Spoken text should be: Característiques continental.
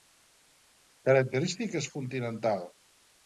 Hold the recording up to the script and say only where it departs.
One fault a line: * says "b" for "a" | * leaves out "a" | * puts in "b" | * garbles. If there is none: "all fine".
all fine